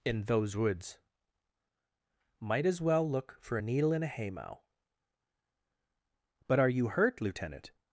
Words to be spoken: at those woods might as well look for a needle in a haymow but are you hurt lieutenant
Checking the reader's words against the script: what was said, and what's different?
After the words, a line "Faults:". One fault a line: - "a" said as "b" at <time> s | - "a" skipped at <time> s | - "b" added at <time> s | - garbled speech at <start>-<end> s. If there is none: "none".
in those woods might as well look for a needle in a haymow but are you hurt lieutenant
Faults:
- "at" said as "in" at 0.1 s